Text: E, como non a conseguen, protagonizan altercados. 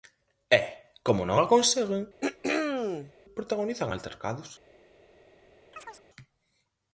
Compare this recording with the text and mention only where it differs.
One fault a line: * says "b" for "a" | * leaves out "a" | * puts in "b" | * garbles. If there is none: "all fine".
all fine